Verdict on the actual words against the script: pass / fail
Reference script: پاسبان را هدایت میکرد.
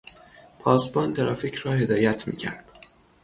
fail